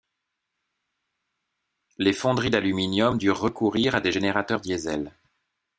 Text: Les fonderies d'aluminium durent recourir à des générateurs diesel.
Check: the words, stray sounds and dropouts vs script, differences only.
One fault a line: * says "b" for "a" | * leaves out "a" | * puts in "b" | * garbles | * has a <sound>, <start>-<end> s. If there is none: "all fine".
all fine